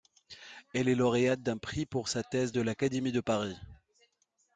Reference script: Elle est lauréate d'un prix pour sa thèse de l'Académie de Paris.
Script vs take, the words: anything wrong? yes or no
no